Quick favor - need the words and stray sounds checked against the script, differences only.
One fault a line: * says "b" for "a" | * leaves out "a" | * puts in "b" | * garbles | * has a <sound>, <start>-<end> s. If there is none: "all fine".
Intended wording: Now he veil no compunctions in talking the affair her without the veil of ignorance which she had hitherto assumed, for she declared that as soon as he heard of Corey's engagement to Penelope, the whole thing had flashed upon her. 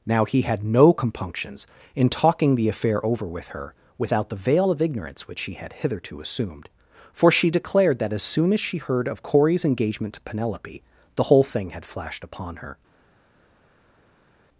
* says "had" for "veil"
* puts in "over with"
* says "she" for "he"